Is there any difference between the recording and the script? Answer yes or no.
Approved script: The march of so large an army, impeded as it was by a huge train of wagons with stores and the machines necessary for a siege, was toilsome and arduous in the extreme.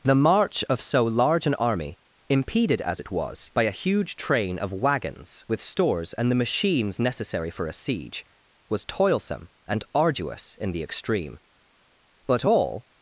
yes